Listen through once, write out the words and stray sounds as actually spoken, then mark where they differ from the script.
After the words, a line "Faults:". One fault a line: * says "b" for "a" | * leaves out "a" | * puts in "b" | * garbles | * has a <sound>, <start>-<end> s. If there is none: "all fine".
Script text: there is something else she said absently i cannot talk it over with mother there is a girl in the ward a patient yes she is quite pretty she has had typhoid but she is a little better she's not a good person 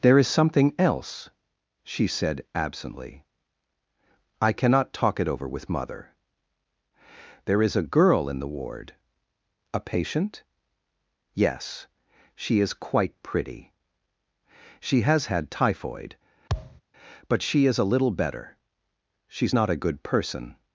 there is something else she said absently i cannot talk it over with mother there is a girl in the ward a patient yes she is quite pretty she has had typhoid but she is a little better she's not a good person
Faults:
* has a thud, 16.5-16.8 s